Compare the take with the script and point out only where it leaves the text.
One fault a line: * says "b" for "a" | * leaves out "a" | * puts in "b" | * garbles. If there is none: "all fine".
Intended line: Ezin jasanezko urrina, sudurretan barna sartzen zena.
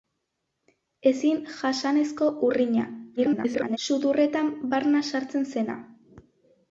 * garbles